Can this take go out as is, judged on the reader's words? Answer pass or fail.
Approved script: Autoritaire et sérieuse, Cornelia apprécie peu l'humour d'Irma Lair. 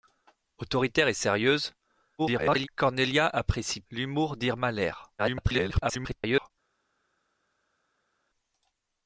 fail